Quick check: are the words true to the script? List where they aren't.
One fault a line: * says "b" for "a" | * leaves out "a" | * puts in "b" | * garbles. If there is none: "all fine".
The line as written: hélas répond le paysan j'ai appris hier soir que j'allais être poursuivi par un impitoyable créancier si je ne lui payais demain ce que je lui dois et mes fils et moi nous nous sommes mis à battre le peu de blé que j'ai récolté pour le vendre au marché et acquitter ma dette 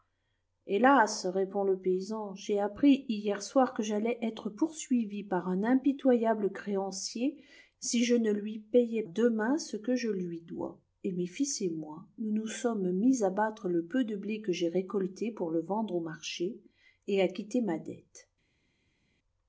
all fine